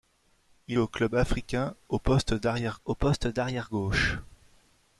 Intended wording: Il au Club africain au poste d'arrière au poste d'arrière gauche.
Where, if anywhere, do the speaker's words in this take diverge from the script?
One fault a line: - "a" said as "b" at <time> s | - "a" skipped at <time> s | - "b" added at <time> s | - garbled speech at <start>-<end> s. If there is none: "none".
none